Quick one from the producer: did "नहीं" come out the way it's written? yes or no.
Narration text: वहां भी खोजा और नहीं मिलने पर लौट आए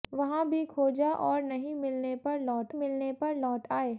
yes